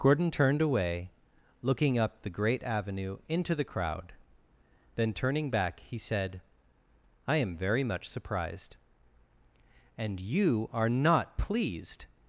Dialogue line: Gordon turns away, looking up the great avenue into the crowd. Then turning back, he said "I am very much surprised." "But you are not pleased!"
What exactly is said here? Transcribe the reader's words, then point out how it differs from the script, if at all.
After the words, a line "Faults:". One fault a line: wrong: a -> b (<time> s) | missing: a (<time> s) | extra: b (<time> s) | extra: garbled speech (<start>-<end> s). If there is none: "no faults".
Gordon turned away, looking up the great avenue into the crowd. Then turning back, he said "I am very much surprised." "And you are not pleased!"
Faults:
wrong: turns -> turned (0.3 s)
wrong: But -> And (10.0 s)